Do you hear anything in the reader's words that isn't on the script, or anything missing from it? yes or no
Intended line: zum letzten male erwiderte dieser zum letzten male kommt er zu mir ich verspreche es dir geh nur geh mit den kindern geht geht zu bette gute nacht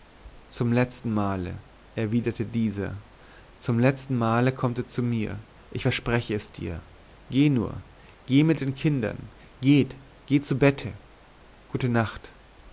no